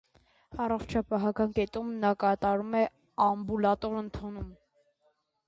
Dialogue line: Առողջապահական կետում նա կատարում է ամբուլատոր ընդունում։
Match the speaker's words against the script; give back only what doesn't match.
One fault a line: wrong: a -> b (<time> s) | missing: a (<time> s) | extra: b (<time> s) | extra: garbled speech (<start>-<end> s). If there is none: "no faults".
no faults